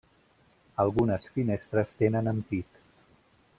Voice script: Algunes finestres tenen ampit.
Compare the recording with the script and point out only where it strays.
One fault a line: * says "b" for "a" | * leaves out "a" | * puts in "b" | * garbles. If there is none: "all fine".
all fine